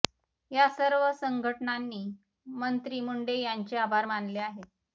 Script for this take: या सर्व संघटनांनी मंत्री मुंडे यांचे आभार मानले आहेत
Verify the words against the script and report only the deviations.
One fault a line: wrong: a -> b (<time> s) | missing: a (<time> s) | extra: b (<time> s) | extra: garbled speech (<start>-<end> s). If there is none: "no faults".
no faults